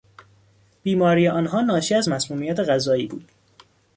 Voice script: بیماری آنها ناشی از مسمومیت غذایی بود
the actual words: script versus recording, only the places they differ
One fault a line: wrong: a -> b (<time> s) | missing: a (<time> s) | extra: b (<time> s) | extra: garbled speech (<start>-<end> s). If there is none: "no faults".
no faults